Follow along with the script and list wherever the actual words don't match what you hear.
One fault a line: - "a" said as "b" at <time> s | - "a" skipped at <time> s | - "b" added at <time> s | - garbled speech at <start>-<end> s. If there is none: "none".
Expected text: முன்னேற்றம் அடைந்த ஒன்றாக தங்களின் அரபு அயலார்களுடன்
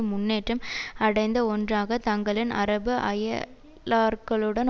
none